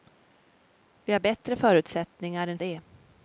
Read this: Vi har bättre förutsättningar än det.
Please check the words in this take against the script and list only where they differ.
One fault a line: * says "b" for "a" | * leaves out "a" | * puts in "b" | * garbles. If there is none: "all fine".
all fine